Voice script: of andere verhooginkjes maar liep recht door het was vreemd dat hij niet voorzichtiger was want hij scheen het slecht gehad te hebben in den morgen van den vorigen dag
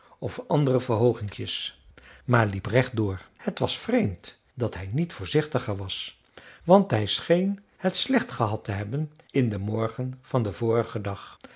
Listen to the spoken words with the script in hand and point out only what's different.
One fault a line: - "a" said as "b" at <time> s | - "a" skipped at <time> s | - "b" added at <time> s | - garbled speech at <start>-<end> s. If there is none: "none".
none